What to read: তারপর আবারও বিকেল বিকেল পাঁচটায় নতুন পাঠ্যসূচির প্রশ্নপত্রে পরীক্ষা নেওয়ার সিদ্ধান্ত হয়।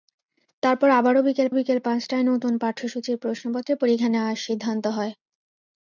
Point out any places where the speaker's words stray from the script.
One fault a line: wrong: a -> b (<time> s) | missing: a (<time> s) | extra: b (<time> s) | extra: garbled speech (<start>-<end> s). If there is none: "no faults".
no faults